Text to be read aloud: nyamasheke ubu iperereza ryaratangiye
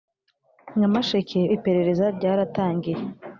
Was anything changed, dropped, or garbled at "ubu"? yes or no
yes